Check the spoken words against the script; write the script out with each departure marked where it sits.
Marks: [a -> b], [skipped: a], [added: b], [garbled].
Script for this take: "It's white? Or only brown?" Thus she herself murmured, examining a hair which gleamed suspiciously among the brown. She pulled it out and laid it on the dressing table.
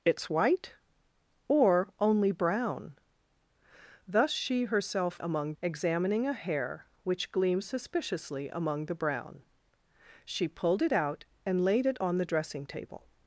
"It's white? Or only brown?" Thus she herself [murmured, -> among] examining a hair which gleamed suspiciously among the brown. She pulled it out and laid it on the dressing table.